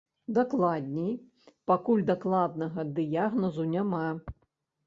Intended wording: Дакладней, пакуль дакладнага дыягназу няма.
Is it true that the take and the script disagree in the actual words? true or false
false